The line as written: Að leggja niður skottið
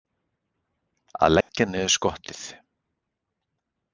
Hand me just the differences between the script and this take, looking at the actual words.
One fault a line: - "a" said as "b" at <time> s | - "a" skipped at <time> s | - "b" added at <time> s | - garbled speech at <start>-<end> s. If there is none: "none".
none